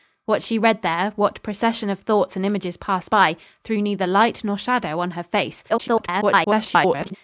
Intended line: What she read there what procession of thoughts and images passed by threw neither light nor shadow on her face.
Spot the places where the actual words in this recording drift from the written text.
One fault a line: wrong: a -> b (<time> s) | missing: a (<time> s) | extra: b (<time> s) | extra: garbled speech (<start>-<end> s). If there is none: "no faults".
extra: garbled speech (5.7-7.2 s)